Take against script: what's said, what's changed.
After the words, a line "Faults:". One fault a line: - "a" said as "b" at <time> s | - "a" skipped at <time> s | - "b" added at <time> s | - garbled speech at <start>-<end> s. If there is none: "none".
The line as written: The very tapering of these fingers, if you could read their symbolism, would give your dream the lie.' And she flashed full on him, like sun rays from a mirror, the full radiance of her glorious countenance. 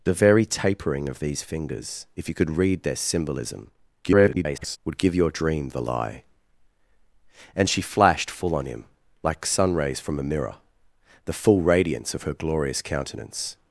The very tapering of these fingers, if you could read their symbolism, [garbled] would give your dream the lie.' And she flashed full on him, like sun rays from a mirror, the full radiance of her glorious countenance.
Faults:
- garbled speech at 4.0-4.8 s